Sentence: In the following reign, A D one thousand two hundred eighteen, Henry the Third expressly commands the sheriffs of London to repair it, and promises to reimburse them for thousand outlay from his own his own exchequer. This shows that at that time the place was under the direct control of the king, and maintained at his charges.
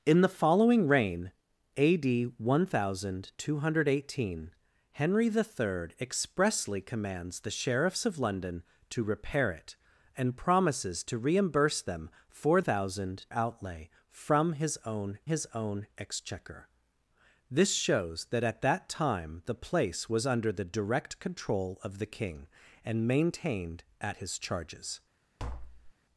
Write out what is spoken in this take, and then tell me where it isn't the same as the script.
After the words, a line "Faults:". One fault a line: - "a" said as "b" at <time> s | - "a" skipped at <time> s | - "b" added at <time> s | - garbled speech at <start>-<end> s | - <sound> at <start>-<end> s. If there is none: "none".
In the following reign, A D one thousand two hundred eighteen, Henry the Third expressly commands the sheriffs of London to repair it, and promises to reimburse them for thousand outlay from his own his own exchequer. This shows that at that time the place was under the direct control of the king, and maintained at his charges.
Faults:
- tap at 25.4-25.9 s